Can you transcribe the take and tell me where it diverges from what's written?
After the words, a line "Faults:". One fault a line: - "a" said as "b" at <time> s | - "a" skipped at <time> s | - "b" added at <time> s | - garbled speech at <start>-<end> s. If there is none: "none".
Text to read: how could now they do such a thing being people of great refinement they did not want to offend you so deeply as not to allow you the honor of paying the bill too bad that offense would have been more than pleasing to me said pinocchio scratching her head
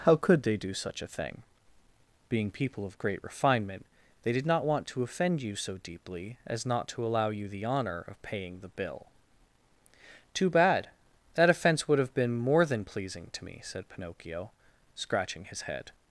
how could they do such a thing being people of great refinement they did not want to offend you so deeply as not to allow you the honor of paying the bill too bad that offense would have been more than pleasing to me said pinocchio scratching his head
Faults:
- "now" skipped at 0.4 s
- "her" said as "his" at 15.4 s